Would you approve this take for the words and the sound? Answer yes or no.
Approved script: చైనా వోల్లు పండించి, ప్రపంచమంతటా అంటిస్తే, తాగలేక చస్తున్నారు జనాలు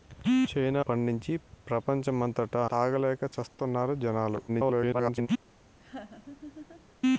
no